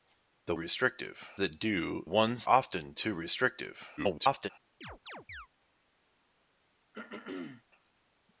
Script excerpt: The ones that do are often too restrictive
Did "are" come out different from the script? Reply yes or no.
yes